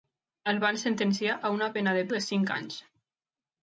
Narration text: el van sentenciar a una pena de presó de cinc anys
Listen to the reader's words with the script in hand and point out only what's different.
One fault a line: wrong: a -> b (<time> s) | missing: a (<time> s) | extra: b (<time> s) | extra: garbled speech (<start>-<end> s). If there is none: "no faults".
missing: presó (2.0 s)